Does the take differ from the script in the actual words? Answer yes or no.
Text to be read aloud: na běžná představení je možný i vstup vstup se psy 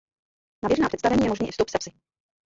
yes